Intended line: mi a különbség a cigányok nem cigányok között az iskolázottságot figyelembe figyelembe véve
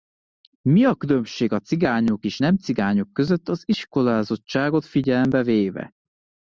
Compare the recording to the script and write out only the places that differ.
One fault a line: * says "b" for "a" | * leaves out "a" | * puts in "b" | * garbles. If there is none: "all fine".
* puts in "és"
* leaves out "figyelembe"